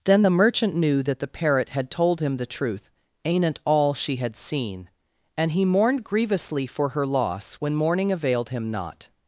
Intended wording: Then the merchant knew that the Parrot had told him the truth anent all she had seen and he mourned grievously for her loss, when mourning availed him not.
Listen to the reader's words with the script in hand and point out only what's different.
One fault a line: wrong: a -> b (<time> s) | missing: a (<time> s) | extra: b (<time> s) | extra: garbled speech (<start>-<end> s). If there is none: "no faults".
no faults